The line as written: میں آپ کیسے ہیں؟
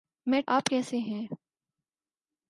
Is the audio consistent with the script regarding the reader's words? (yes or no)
yes